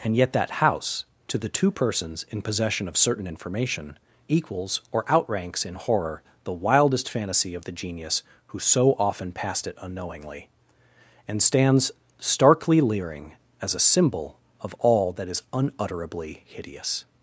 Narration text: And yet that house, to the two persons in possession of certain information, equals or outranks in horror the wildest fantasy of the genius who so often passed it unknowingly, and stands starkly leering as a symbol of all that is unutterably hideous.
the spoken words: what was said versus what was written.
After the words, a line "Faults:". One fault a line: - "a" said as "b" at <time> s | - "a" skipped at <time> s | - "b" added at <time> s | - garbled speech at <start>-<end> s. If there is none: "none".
And yet that house, to the two persons in possession of certain information, equals or outranks in horror the wildest fantasy of the genius who so often passed it unknowingly, and stands starkly leering as a symbol of all that is unutterably hideous.
Faults:
none